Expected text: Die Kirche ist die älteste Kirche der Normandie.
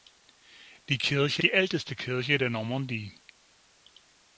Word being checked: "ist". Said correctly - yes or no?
no